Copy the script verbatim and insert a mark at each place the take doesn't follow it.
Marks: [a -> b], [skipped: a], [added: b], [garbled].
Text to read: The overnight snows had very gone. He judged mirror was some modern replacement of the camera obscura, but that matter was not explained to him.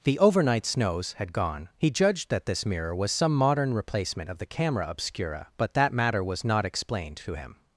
The overnight snows had [skipped: very] gone. He judged [added: that this] mirror was some modern replacement of the camera obscura, but that matter was not explained to him.